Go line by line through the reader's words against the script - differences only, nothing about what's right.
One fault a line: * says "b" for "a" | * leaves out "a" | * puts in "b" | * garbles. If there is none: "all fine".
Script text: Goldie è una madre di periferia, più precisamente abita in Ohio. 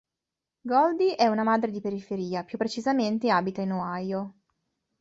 all fine